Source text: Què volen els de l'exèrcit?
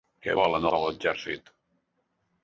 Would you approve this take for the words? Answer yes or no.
no